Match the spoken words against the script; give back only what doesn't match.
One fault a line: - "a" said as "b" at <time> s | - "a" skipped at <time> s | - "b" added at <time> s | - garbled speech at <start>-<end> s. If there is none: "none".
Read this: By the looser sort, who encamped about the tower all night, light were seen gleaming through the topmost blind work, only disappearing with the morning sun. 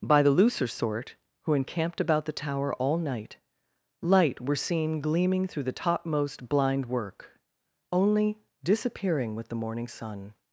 none